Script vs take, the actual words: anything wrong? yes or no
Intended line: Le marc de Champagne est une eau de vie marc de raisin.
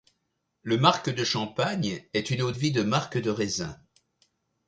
yes